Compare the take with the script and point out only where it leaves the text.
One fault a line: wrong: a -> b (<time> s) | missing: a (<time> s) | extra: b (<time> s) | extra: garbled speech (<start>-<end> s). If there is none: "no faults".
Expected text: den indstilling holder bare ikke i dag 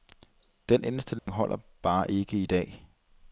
no faults